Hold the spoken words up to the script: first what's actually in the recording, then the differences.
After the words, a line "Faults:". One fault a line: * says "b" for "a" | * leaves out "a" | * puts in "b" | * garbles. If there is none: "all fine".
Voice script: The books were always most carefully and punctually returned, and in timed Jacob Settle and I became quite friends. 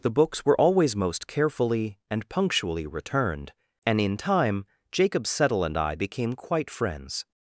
The books were always most carefully and punctually returned, and in time Jacob Settle and I became quite friends.
Faults:
* says "time" for "timed"